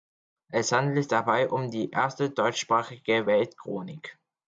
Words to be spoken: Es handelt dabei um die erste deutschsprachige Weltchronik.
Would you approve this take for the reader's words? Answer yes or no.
yes